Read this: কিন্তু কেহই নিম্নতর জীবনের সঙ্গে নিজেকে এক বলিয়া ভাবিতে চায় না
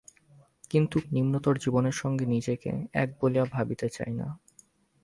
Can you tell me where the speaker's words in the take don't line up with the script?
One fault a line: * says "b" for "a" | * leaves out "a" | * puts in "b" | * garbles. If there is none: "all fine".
* leaves out "কেহই"